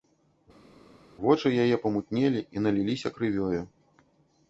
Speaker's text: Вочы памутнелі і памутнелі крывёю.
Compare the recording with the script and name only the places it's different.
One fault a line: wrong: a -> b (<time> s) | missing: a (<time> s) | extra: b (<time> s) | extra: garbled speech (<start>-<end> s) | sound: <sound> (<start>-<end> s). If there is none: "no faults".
extra: яе (1.6 s)
wrong: памутнелі -> наліліся (2.6 s)